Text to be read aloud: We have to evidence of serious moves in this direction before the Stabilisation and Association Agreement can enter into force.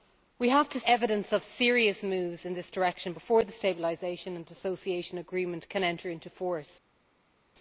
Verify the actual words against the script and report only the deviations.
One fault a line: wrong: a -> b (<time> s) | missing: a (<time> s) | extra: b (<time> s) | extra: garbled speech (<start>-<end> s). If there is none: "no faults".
no faults